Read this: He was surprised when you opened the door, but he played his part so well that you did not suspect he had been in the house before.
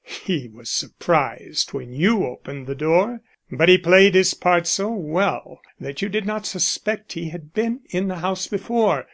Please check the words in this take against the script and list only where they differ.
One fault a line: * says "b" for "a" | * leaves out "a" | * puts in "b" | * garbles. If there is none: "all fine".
all fine